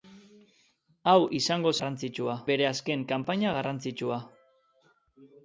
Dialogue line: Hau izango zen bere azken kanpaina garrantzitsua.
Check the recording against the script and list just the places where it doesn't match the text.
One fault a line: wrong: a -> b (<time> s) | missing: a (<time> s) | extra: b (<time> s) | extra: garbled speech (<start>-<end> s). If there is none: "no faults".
wrong: zen -> garrantzitsua (1.8 s)